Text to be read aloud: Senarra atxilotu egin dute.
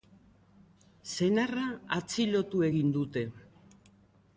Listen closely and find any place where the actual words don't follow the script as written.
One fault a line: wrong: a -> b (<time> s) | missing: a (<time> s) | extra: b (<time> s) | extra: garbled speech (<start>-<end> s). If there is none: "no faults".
no faults